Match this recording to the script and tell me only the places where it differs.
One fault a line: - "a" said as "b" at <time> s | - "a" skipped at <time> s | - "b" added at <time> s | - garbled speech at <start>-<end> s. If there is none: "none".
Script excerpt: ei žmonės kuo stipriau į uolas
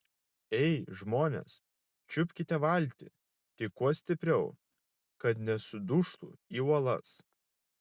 - "čiupkite valtį tik" added at 2.1 s
- "kad nesudužtų" added at 5.2 s